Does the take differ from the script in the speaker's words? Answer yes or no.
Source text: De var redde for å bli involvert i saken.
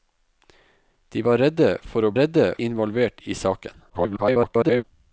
yes